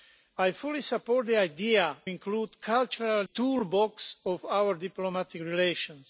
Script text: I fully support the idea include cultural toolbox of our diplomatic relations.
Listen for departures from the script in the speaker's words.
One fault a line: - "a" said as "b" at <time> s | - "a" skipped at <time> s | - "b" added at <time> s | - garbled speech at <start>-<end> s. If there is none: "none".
none